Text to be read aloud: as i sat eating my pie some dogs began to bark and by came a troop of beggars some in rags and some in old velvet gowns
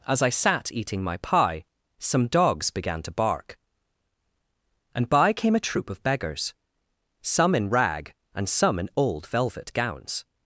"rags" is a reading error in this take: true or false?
true